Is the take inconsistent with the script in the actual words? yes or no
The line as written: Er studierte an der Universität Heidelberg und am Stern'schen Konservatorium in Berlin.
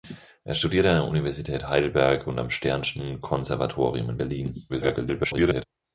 yes